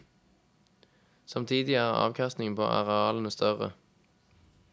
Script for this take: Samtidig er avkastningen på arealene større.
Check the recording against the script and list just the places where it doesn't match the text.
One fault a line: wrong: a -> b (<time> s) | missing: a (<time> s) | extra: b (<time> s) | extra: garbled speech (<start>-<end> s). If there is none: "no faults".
no faults